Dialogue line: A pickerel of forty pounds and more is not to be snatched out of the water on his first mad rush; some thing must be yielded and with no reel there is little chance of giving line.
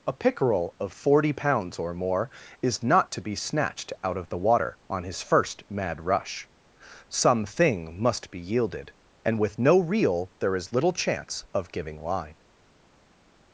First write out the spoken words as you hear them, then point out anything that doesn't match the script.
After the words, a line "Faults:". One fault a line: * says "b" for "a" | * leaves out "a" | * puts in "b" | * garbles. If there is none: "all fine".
A pickerel of forty pounds or more is not to be snatched out of the water on his first mad rush; some thing must be yielded and with no reel there is little chance of giving line.
Faults:
* says "or" for "and"